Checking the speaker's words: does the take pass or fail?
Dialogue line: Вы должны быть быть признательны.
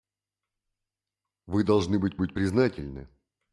pass